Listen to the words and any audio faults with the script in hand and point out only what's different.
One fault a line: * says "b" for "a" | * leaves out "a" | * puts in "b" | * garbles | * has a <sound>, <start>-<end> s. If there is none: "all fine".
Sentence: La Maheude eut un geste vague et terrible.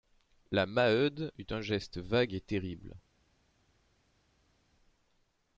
all fine